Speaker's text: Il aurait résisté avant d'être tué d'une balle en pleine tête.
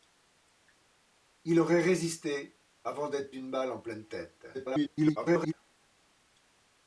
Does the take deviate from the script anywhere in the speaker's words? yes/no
yes